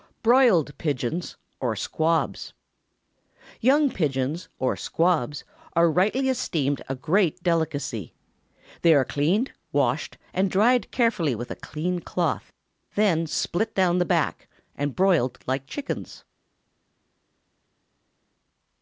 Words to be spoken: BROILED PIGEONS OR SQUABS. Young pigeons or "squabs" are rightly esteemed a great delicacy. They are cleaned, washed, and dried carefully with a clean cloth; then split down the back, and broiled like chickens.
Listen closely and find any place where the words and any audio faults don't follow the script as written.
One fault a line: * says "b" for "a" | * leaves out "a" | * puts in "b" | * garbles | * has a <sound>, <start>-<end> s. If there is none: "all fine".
all fine